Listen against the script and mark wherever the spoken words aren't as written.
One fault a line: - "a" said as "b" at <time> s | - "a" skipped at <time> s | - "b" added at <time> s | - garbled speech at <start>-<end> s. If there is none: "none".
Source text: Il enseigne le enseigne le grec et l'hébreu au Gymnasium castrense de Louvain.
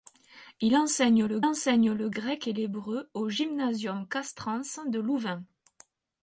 none